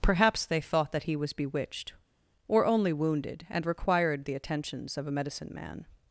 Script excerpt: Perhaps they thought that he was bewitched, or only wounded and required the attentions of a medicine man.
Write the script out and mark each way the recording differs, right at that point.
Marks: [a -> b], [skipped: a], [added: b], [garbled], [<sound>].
Perhaps they thought that he was bewitched, or only wounded and required the attentions of a medicine man.